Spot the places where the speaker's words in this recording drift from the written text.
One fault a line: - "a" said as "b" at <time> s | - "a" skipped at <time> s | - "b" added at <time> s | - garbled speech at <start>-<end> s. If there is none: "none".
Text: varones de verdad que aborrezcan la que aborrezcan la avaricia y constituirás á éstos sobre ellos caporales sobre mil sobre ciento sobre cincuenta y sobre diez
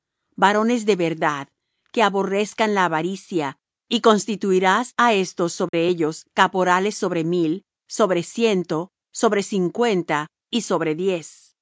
- "que aborrezcan la" skipped at 2.9 s